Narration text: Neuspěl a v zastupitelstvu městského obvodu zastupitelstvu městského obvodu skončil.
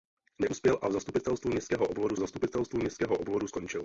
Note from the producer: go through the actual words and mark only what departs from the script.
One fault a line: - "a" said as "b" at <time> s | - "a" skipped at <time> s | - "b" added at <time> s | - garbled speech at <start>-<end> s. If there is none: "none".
none